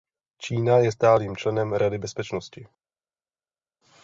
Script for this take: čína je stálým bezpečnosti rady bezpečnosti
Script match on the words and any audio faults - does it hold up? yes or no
no